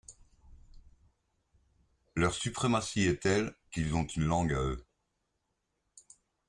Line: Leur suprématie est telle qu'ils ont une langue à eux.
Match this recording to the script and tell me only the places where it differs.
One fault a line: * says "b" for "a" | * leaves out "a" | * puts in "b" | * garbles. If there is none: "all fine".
all fine